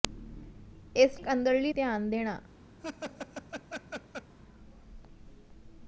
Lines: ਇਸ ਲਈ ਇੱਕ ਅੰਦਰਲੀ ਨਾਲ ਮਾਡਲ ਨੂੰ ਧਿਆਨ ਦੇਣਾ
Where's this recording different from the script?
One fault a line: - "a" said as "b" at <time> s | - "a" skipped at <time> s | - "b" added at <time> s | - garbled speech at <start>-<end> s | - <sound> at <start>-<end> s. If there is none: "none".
- "ਲਈ" skipped at 1.2 s
- "ਨਾਲ ਮਾਡਲ ਨੂੰ" skipped at 1.7 s
- laugh at 2.8-4.3 s